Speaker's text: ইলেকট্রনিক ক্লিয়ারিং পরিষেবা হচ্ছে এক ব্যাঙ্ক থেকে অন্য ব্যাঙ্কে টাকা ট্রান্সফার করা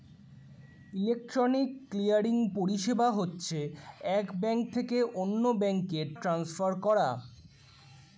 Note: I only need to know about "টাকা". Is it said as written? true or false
false